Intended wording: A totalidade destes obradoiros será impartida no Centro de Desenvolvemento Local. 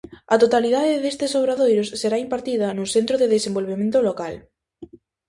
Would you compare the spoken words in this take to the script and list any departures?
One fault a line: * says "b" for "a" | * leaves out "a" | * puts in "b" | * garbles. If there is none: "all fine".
all fine